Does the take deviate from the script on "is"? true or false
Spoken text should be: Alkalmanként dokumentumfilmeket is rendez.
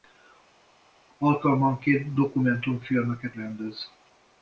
true